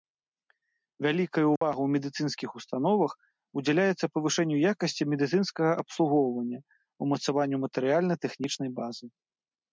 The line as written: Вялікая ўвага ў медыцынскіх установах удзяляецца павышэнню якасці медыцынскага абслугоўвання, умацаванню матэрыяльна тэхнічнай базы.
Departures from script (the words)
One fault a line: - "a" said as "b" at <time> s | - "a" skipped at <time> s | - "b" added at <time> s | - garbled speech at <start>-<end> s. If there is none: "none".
none